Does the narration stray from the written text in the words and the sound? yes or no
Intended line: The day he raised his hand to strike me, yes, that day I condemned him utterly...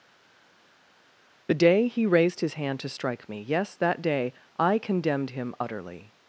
no